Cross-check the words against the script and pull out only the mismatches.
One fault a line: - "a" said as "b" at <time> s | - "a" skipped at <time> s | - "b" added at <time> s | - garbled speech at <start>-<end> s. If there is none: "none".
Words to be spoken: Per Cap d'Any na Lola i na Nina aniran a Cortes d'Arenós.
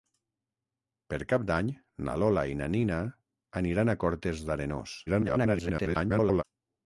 - garbled speech at 5.1-6.4 s